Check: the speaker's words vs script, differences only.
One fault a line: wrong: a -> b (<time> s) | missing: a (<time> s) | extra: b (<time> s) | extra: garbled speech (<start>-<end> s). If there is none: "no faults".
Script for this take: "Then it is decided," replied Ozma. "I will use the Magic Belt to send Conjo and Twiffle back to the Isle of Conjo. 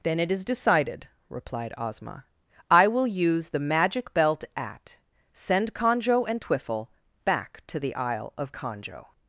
wrong: to -> at (4.5 s)